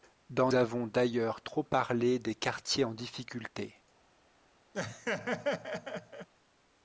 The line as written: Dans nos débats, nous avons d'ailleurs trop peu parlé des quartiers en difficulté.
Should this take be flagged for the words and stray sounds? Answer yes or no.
yes